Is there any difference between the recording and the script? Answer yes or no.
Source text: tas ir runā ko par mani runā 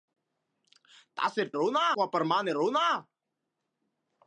no